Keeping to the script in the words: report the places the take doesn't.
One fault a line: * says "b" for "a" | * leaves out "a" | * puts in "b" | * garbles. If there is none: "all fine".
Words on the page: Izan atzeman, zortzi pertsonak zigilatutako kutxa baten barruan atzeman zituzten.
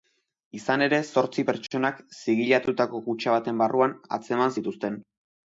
* says "ere" for "atzeman"